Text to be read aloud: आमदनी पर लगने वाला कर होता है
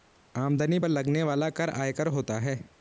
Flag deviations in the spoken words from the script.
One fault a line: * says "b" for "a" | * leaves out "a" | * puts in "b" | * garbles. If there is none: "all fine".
* puts in "आयकर"